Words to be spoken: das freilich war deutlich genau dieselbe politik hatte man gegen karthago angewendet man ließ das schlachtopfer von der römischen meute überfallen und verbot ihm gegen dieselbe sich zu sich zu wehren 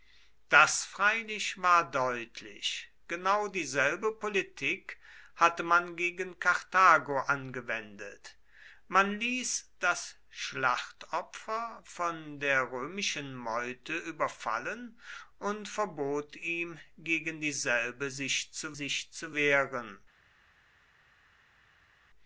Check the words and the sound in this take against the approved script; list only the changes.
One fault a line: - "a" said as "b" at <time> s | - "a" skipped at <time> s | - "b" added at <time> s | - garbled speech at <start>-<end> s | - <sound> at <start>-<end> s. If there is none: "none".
none